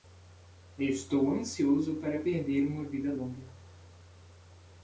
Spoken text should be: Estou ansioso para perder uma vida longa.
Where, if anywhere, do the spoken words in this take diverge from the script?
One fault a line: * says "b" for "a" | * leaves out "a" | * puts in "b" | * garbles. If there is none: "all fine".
all fine